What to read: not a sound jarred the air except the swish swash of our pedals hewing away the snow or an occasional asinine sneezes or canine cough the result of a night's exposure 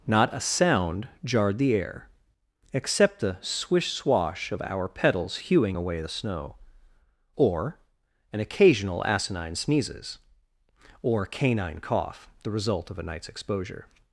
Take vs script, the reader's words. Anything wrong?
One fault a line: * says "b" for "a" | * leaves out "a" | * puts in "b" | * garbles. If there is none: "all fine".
all fine